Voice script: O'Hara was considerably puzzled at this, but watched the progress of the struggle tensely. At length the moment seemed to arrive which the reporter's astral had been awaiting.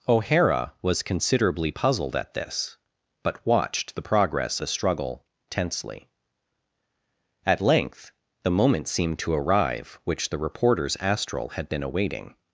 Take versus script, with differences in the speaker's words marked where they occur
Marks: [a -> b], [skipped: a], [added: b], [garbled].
O'Hara was considerably puzzled at this, but watched the progress [skipped: of] the struggle tensely. At length the moment seemed to arrive which the reporter's astral had been awaiting.